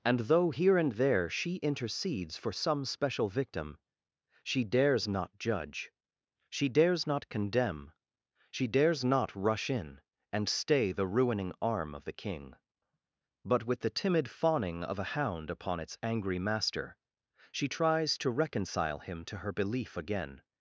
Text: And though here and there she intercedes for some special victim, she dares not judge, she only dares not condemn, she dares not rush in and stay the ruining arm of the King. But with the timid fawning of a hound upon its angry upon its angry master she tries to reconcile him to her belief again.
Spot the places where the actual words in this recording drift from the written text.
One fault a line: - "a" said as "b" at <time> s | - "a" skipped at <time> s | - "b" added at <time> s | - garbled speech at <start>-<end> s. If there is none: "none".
- "only" skipped at 6.7 s
- "upon its angry" skipped at 16.4 s